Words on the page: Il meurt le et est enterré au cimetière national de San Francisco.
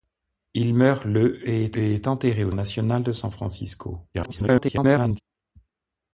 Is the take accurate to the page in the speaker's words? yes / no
no